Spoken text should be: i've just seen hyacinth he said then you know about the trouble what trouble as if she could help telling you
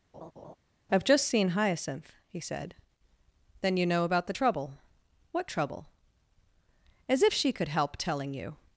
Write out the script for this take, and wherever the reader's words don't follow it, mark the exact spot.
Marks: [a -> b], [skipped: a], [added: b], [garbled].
i've just seen hyacinth he said then you know about the trouble what trouble as if she could help telling you